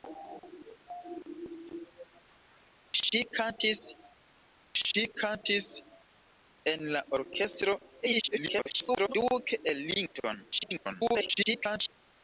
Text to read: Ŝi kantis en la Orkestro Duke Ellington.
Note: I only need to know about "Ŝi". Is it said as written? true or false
true